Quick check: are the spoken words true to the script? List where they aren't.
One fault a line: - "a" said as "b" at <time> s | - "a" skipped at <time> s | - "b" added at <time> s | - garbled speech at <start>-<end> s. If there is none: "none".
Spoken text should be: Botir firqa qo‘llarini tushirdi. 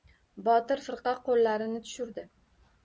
none